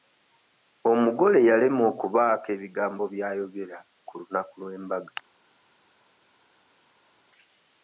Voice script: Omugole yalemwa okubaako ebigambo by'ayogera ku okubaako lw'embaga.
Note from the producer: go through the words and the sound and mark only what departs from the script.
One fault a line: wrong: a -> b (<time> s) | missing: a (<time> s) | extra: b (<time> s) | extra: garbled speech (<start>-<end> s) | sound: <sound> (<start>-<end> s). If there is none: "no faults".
wrong: okubaako -> lunaku (4.2 s)